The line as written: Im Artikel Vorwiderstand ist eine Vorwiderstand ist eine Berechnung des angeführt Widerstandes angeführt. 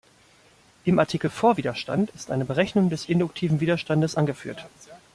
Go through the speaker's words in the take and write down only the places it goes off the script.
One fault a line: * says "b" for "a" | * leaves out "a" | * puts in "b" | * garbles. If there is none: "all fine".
* leaves out "Vorwiderstand ist eine"
* says "induktiven" for "angeführt"